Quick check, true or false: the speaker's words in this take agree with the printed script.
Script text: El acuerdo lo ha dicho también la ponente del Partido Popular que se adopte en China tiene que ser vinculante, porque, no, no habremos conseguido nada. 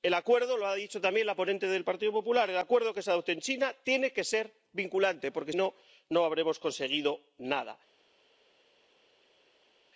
true